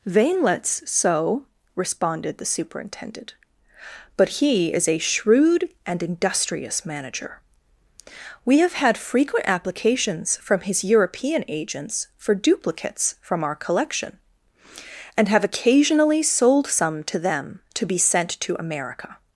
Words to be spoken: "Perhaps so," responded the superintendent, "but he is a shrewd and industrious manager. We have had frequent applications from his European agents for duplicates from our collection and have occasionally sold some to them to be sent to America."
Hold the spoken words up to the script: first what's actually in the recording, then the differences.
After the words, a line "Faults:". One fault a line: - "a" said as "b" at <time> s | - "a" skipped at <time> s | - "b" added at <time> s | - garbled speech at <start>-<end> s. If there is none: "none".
"Veinlets so," responded the superintendent, "but he is a shrewd and industrious manager. We have had frequent applications from his European agents for duplicates from our collection and have occasionally sold some to them to be sent to America."
Faults:
- "Perhaps" said as "Veinlets" at 0.1 s